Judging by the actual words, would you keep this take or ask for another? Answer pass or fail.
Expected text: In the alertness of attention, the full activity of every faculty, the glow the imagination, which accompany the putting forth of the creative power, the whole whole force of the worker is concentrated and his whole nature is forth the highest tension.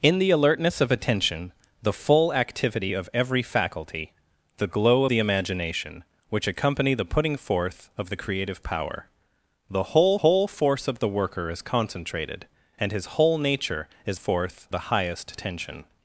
pass